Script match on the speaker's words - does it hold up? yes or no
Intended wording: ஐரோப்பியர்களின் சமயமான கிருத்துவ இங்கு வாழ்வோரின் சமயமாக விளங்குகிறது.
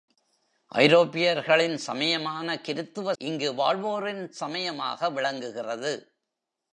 yes